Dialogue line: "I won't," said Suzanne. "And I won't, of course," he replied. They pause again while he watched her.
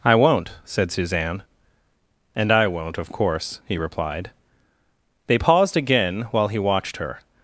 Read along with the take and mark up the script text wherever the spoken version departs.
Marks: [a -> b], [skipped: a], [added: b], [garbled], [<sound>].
"I won't," said Suzanne. "And I won't, of course," he replied. They [pause -> paused] again while he watched her.